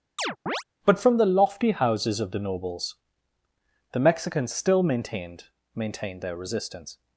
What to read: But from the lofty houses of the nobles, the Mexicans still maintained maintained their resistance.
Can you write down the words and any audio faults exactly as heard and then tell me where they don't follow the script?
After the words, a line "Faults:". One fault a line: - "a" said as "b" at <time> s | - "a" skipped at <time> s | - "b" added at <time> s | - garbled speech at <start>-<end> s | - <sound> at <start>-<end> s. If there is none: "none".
But from the lofty houses of the nobles, the Mexicans still maintained maintained their resistance.
Faults:
- chirp at 0.2-0.6 s